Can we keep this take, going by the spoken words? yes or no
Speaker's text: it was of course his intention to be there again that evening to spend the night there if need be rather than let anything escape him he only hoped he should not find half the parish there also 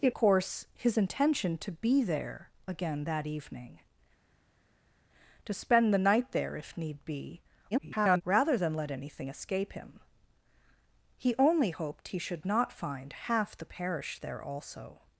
no